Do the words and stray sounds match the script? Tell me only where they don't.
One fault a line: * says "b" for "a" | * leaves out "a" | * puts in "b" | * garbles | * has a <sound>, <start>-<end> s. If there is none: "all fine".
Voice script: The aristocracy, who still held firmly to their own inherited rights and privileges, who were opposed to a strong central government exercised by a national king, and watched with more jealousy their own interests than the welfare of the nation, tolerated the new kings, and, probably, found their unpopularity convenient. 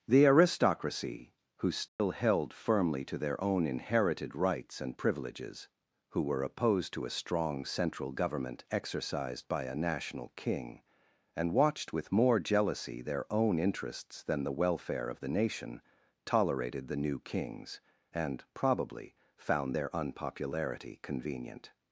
* has a dropout, 1.9-2.0 s